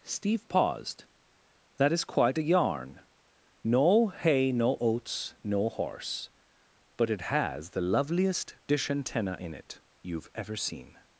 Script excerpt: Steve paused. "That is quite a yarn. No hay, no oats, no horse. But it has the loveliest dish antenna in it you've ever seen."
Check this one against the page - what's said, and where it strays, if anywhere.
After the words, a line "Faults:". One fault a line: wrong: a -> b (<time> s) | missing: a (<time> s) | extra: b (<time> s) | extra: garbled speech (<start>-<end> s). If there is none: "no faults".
Steve paused. "That is quite a yarn. No hay, no oats, no horse. But it has the loveliest dish antenna in it you've ever seen."
Faults:
no faults